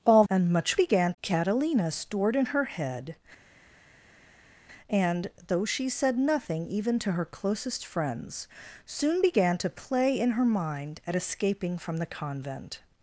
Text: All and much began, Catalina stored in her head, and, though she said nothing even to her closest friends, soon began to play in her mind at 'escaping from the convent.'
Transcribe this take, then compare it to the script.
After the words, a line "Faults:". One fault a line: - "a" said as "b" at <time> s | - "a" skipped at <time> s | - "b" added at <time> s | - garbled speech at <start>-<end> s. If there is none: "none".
All and much began, Catalina stored in her head, and, though she said nothing even to her closest friends, soon began to play in her mind at 'escaping from the convent.'
Faults:
none